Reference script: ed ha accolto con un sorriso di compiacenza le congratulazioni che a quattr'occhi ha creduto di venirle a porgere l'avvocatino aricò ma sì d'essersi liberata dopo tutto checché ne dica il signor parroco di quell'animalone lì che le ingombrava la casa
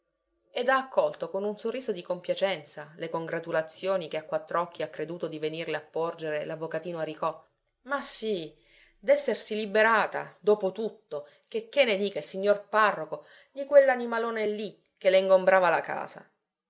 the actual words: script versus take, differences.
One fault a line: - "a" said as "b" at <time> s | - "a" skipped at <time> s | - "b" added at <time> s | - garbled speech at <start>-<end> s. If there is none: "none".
none